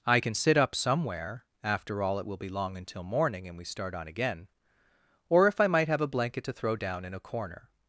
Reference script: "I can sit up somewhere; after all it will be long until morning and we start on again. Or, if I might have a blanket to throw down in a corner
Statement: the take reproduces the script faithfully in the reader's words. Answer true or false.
true